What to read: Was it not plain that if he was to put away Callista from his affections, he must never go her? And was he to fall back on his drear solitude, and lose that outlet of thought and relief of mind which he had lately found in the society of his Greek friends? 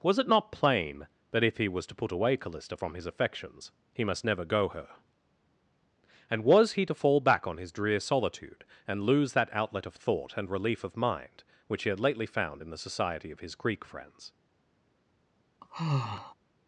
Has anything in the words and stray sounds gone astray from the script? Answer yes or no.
yes